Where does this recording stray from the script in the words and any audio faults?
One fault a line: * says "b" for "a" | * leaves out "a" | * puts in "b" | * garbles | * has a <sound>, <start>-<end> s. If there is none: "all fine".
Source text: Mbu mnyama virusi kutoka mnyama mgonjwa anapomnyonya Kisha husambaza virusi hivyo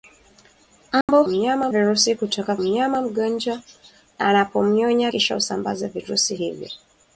* has a dropout, 1.0-1.1 s